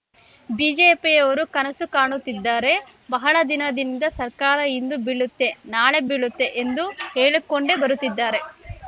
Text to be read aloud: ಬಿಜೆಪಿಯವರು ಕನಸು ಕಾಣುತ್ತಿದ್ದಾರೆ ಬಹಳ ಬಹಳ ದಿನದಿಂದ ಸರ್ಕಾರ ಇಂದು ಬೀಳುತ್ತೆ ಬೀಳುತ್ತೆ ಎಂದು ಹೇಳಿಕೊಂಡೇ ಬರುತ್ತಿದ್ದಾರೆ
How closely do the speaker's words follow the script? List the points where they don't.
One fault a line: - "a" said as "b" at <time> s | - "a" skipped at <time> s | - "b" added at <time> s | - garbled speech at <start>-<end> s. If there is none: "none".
- "ಬಹಳ" skipped at 3.4 s
- "ನಾಳೆ" added at 5.7 s